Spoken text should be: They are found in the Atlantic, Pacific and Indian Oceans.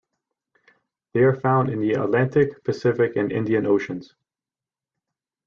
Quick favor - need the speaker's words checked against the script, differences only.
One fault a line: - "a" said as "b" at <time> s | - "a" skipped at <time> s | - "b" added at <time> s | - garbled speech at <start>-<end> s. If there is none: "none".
none